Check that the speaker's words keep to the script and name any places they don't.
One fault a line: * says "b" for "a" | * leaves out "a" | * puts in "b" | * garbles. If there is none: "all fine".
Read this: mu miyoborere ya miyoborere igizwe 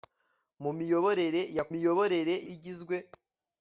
all fine